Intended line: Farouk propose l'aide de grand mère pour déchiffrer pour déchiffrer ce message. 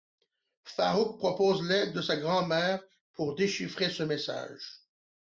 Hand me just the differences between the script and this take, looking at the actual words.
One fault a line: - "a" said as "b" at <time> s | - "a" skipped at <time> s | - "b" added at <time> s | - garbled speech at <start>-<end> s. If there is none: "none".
- "sa" added at 2.0 s
- "pour déchiffrer" skipped at 3.9 s